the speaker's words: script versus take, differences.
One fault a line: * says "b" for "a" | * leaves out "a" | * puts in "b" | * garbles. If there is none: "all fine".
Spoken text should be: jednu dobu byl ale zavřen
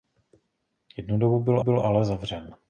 * puts in "byl"